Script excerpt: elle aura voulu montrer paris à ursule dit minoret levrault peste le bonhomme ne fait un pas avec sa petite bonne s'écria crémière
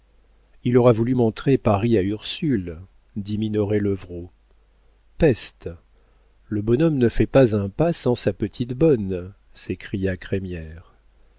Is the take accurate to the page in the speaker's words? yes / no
no